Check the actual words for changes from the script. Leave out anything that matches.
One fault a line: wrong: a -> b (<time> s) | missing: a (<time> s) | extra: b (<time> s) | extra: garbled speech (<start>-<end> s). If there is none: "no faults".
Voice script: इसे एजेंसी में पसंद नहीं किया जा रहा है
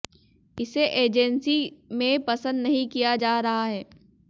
no faults